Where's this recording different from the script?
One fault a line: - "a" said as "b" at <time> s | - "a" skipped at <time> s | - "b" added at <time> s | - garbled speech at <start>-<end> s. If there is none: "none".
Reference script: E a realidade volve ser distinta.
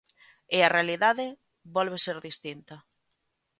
none